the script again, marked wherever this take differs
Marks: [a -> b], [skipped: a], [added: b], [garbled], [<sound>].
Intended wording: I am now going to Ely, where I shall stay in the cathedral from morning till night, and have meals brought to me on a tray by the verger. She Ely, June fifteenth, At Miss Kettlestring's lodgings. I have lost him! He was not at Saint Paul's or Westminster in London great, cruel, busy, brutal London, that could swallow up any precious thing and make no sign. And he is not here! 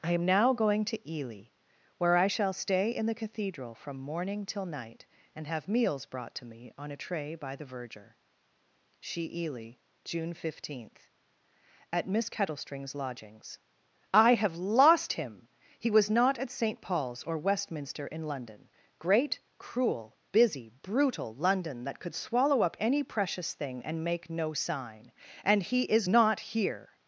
I am now going to Ely, where I shall stay in the cathedral from morning till night, and have meals brought to me on a tray by the verger. She Ely, June fifteenth, At Miss Kettlestring's lodgings. I have lost him! He was not at Saint Paul's or Westminster in London great, cruel, busy, brutal London, that could swallow up any precious thing and make no sign. And he is not here!